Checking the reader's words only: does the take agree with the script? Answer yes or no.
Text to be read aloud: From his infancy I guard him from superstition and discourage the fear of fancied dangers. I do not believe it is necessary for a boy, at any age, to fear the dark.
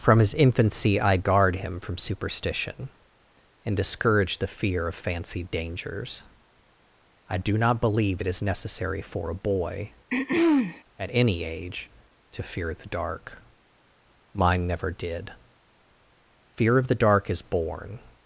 no